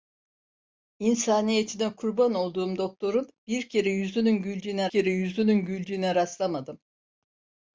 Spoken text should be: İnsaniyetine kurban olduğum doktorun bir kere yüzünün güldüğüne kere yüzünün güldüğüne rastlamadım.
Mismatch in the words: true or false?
false